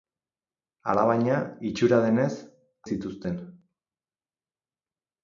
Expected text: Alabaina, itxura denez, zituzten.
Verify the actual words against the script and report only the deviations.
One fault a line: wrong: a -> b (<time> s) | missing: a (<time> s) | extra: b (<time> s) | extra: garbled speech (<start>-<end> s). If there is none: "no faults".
no faults